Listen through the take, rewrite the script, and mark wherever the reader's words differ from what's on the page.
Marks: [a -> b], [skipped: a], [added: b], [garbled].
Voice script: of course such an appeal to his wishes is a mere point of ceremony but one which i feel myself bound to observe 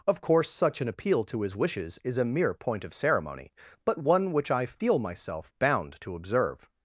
of course such an appeal to his wishes is a mere point of ceremony but one which i feel myself bound to observe